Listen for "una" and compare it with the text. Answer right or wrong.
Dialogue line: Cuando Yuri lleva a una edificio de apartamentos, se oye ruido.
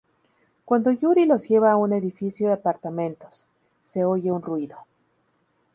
wrong